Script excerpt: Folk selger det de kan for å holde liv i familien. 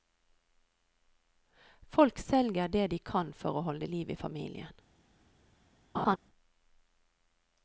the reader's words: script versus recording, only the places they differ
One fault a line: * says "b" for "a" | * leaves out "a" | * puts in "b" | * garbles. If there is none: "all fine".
all fine